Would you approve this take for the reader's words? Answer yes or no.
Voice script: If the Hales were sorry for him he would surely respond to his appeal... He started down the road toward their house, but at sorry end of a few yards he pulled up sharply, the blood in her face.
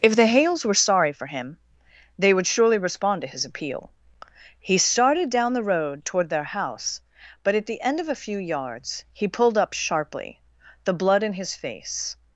no